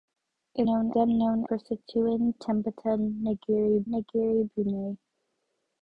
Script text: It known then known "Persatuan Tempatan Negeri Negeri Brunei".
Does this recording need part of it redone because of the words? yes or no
no